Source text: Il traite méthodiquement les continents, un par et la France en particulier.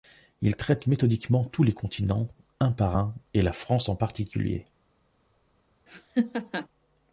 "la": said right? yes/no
yes